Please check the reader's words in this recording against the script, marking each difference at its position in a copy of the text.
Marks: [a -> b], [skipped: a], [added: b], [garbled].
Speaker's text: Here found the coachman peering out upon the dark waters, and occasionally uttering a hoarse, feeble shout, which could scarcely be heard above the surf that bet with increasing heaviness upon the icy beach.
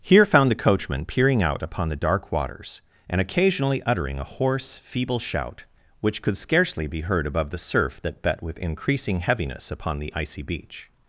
Here found the coachman peering out upon the dark waters, and occasionally uttering a hoarse, feeble shout, which could scarcely be heard above the surf that bet with increasing heaviness upon the icy beach.